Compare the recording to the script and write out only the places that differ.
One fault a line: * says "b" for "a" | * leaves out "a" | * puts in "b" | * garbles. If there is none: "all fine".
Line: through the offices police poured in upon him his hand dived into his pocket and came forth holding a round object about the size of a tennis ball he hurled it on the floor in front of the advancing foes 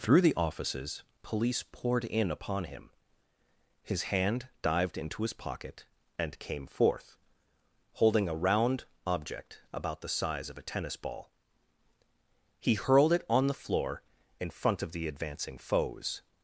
all fine